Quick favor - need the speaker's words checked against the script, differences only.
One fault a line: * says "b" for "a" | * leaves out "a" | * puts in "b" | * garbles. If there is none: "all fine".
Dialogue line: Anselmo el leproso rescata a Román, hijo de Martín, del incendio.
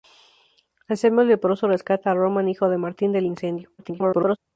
* garbles